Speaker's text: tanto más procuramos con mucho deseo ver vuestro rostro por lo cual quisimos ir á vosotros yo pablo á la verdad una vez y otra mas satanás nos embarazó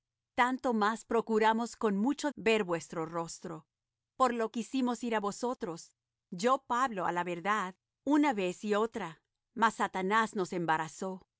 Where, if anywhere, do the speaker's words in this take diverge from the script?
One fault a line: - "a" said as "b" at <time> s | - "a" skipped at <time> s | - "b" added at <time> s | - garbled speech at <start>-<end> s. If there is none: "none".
- "deseo" skipped at 2.3 s
- "cual" skipped at 4.5 s